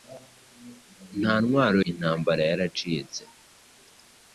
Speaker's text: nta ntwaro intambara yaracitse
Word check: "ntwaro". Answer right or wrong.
right